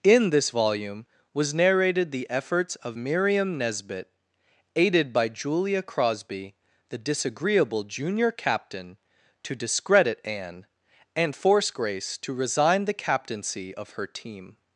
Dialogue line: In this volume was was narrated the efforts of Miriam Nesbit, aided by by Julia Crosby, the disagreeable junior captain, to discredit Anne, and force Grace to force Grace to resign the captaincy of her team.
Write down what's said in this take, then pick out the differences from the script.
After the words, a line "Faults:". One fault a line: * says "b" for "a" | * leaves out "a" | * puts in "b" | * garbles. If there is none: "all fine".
In this volume was narrated the efforts of Miriam Nesbit, aided by Julia Crosby, the disagreeable junior captain, to discredit Anne, and force Grace to resign the captaincy of her team.
Faults:
* leaves out "was"
* leaves out "by"
* leaves out "force Grace to"